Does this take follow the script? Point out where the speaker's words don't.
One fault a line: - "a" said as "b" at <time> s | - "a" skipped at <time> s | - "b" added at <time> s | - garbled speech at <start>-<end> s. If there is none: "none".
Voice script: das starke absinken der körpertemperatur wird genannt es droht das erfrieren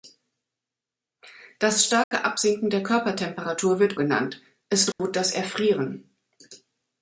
none